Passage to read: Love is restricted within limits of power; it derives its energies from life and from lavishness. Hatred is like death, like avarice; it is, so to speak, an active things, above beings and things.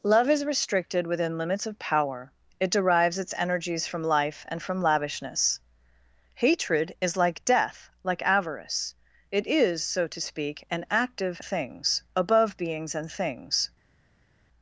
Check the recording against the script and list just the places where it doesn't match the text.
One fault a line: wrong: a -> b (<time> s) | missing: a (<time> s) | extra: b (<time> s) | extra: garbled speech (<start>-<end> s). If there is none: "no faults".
no faults